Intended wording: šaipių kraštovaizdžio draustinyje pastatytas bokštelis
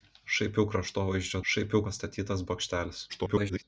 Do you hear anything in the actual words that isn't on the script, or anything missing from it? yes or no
yes